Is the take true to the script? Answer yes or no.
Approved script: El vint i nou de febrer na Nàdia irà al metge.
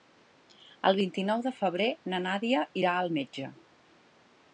yes